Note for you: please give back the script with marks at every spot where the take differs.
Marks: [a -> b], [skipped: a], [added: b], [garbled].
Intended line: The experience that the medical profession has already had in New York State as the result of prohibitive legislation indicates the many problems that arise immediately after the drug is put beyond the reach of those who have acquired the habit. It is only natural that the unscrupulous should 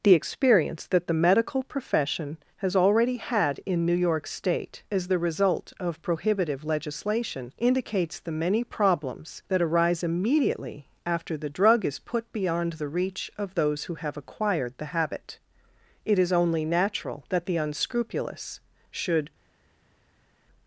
The experience that the medical profession has already had in New York State as the result of prohibitive legislation indicates the many problems that arise immediately after the drug is put beyond the reach of those who have acquired the habit. It is only natural that the unscrupulous should